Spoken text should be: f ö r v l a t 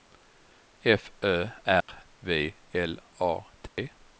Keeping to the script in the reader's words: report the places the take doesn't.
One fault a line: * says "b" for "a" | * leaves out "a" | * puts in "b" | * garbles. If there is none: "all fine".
all fine